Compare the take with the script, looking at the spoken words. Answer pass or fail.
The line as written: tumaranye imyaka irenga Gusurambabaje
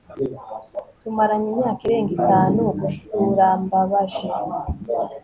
fail